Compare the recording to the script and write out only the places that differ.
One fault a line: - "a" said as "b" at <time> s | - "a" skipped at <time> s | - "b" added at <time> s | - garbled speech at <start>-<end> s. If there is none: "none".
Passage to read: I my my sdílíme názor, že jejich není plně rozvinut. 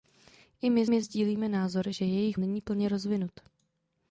none